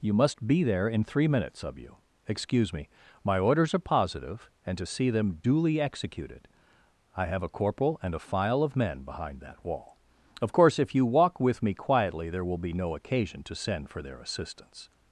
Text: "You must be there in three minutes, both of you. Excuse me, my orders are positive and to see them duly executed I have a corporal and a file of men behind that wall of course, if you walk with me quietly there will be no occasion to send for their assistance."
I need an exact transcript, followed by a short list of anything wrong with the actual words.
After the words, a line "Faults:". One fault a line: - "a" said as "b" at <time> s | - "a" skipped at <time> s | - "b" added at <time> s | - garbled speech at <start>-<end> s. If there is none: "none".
"You must be there in three minutes, of you. Excuse me, my orders are positive and to see them duly executed I have a corporal and a file of men behind that wall of course, if you walk with me quietly there will be no occasion to send for their assistance."
Faults:
- "both" skipped at 1.6 s